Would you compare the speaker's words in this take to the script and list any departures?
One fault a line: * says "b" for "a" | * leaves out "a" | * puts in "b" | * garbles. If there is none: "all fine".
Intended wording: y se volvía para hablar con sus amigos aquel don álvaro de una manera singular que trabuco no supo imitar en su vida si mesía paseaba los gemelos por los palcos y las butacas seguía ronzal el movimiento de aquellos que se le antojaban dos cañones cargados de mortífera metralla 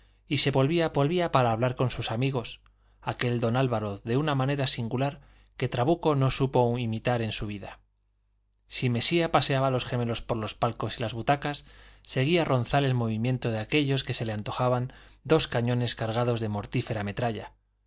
* puts in "volvía"